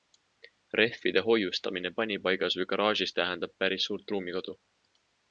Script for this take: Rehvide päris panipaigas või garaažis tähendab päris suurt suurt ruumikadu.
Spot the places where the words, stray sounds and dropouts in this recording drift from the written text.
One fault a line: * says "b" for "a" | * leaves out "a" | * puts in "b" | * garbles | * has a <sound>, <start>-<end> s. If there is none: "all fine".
* says "hoiustamine" for "päris"
* leaves out "suurt"